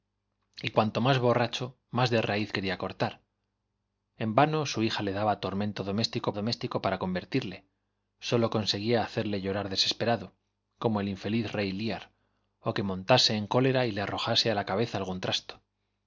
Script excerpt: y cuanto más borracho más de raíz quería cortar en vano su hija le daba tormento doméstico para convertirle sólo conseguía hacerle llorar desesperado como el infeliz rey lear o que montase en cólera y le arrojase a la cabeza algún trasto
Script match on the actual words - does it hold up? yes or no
no